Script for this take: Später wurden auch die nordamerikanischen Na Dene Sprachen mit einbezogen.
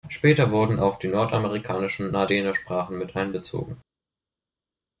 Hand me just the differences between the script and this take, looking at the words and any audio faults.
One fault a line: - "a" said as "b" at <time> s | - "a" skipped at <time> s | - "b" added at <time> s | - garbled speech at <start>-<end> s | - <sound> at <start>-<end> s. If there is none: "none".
none